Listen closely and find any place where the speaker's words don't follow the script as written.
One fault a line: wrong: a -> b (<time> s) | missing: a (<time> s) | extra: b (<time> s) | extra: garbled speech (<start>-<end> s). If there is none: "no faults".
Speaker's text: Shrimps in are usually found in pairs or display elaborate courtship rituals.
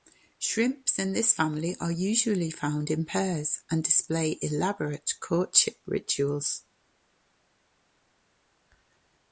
extra: this family (1.1 s)
wrong: or -> and (3.7 s)